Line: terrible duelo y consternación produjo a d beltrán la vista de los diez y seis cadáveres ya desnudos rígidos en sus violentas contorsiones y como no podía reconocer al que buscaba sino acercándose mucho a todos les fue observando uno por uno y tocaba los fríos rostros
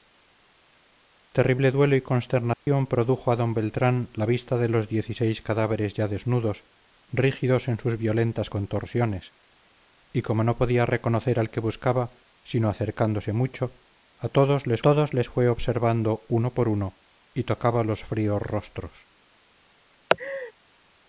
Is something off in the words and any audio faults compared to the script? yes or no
yes